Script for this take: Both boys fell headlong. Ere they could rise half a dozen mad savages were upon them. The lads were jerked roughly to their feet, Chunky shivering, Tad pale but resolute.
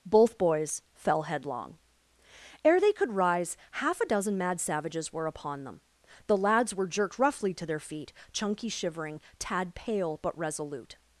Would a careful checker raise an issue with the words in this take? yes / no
no